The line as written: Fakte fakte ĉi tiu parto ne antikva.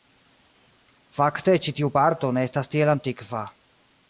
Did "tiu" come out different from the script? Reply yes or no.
no